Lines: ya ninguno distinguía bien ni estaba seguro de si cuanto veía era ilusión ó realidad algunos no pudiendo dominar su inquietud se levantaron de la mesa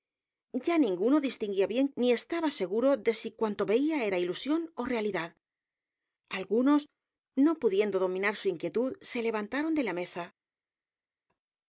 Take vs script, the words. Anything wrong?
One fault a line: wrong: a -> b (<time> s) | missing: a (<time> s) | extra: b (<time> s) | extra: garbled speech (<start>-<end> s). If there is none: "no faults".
no faults